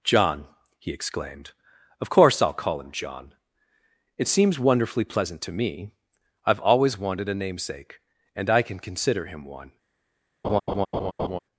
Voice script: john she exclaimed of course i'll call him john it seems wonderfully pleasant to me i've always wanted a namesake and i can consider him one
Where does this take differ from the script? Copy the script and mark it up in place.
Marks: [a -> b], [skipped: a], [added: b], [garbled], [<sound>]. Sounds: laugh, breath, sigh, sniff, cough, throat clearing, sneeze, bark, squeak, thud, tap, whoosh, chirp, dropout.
john [she -> he] exclaimed of course i'll call him john it seems wonderfully pleasant to me i've always wanted a namesake and i can consider him one [laugh]